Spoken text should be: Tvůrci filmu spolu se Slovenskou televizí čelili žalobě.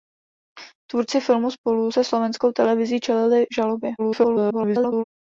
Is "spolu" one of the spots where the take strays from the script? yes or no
no